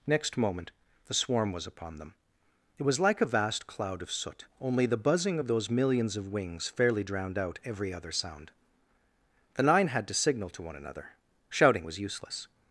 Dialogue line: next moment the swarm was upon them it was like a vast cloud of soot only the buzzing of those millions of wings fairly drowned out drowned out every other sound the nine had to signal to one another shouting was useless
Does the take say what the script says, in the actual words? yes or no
no